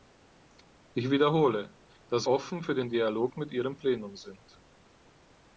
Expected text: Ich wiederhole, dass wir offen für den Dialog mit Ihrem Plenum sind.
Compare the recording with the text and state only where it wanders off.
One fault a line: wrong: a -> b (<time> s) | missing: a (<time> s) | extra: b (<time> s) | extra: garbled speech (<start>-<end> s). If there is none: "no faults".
missing: wir (2.3 s)